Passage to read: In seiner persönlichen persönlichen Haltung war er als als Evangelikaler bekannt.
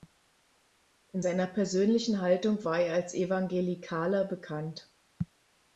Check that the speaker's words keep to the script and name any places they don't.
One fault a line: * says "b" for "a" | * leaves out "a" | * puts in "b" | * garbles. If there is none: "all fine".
* leaves out "persönlichen"
* leaves out "als"